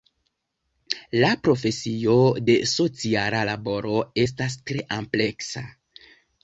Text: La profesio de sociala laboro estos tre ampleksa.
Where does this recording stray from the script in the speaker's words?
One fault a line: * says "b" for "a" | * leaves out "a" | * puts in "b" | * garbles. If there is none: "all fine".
* says "estas" for "estos"